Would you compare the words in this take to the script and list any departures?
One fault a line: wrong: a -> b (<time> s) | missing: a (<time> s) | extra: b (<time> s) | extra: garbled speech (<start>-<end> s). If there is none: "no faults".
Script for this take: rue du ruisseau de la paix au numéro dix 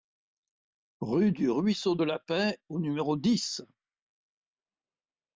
no faults